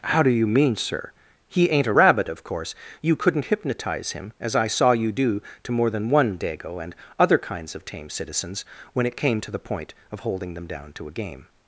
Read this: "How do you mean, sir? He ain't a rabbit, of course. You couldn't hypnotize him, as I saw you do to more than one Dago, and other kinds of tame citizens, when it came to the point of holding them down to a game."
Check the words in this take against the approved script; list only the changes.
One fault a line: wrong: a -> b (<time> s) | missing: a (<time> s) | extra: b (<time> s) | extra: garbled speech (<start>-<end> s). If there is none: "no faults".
no faults